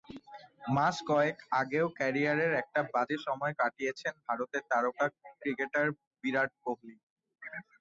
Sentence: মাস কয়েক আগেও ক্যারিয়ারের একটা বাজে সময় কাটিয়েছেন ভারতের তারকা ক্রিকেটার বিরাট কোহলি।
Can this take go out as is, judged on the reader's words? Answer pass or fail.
pass